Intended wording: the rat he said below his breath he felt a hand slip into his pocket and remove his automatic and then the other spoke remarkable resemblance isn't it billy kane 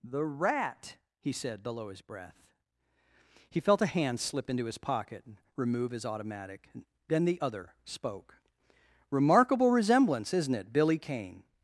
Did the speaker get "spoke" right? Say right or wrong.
right